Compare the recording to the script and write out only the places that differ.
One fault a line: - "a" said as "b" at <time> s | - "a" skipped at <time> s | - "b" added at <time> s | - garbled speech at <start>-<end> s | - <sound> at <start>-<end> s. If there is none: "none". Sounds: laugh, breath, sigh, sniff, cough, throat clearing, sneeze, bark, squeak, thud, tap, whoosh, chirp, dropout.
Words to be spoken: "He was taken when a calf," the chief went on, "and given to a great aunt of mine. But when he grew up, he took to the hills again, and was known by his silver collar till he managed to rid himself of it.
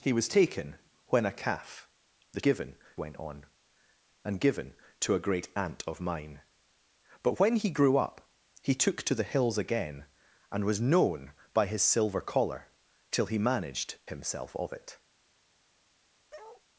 - "chief" said as "given" at 2.4 s
- "to rid" skipped at 14.0 s
- bark at 16.3-16.6 s